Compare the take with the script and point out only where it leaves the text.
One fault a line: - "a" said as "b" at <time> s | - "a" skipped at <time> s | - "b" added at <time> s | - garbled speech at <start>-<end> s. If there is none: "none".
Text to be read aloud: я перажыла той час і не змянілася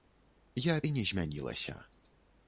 - "перажыла той час" skipped at 0.8 s